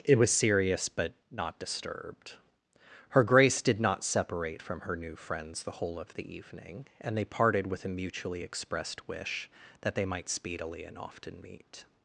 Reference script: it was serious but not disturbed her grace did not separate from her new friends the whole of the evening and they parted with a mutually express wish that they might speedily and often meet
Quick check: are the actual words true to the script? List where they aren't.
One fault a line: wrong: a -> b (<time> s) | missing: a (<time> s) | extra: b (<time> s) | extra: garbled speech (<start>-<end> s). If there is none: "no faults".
wrong: express -> expressed (8.4 s)